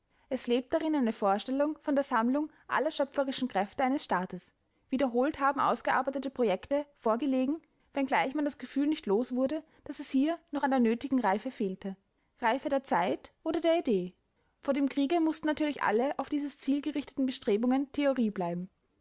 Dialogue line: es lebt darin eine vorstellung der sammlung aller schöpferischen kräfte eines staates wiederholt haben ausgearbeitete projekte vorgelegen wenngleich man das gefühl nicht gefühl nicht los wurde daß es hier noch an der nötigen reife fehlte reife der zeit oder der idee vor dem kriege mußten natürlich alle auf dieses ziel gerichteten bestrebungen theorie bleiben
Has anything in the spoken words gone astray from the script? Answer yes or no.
yes